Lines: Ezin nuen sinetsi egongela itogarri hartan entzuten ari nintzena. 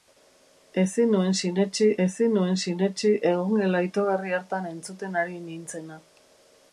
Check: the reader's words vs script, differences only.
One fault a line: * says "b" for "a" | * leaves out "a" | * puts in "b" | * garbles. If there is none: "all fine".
* puts in "ezin nuen sinetsi"